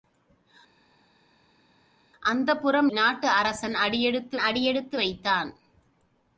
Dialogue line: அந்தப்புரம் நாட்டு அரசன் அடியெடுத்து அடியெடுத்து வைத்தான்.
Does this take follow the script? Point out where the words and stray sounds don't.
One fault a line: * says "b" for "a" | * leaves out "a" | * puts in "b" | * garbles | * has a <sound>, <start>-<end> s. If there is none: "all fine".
all fine